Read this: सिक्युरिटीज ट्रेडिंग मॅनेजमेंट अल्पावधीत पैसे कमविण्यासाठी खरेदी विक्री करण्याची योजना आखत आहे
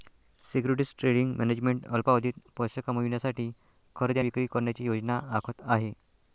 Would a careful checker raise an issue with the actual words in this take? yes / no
no